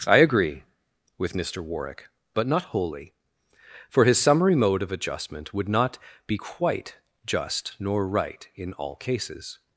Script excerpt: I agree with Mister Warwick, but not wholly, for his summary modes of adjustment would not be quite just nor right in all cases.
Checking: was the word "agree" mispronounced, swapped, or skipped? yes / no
no